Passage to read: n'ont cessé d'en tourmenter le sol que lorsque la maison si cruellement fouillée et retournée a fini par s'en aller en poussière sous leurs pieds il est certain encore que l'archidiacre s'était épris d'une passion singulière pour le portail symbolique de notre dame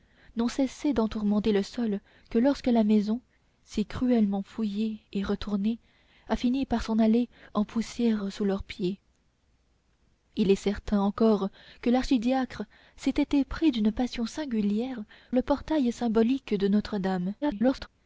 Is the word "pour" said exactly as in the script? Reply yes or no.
no